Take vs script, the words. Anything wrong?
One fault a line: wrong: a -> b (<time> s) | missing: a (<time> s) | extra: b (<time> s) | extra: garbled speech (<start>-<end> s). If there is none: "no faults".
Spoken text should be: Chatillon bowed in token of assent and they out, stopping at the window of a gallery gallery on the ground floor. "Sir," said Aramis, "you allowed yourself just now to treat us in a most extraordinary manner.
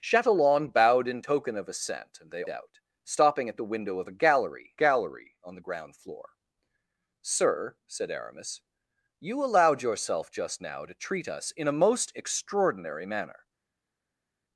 no faults